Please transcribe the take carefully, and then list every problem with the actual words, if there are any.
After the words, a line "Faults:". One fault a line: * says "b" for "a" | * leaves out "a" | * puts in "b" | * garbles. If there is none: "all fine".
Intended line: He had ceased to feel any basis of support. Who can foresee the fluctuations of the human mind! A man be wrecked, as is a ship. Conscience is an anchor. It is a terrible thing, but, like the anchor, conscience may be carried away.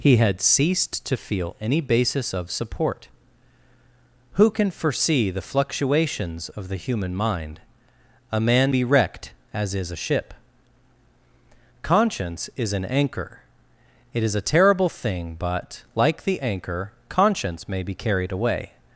He had ceased to feel any basis of support. Who can foresee the fluctuations of the human mind! A man be wrecked, as is a ship. Conscience is an anchor. It is a terrible thing, but, like the anchor, conscience may be carried away.
Faults:
all fine